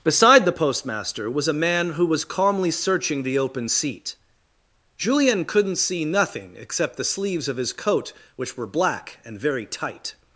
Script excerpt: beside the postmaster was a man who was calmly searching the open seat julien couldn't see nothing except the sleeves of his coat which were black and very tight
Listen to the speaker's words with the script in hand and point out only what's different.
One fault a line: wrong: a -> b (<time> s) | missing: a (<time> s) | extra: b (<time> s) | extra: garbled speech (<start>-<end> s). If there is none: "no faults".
no faults